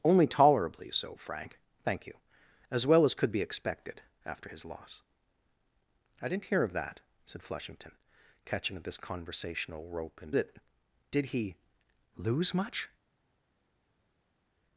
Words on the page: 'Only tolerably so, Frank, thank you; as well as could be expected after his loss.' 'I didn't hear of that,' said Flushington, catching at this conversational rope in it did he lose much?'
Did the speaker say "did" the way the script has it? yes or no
yes